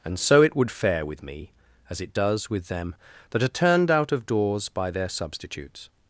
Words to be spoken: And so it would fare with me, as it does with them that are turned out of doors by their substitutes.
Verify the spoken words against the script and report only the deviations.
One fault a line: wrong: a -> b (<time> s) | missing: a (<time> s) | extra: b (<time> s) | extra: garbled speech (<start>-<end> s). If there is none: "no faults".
no faults